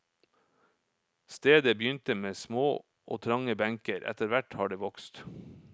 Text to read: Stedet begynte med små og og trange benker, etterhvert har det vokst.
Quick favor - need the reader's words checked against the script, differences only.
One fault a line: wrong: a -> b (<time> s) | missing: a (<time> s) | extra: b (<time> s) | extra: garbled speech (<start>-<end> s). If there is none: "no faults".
missing: og (3.2 s)